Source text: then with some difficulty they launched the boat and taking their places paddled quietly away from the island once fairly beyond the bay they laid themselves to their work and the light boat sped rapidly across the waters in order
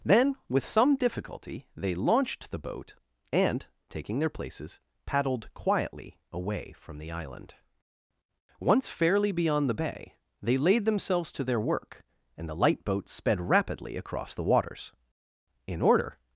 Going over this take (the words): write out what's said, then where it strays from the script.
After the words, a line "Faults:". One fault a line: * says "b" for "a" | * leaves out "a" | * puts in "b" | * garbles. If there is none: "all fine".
then with some difficulty they launched the boat and taking their places paddled quietly away from the island once fairly beyond the bay they laid themselves to their work and the light boat sped rapidly across the waters in order
Faults:
all fine